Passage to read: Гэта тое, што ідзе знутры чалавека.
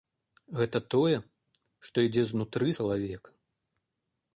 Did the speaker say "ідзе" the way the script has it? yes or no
yes